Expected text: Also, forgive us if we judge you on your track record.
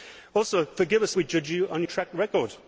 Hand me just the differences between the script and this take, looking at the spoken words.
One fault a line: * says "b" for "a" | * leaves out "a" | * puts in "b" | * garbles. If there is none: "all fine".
* leaves out "if"
* leaves out "your"